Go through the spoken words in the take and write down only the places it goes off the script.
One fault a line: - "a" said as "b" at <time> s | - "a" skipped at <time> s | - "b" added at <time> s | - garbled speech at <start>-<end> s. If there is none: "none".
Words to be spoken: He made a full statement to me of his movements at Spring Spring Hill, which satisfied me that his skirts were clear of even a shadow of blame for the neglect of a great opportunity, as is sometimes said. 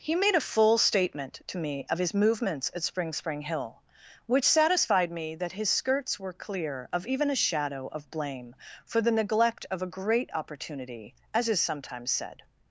none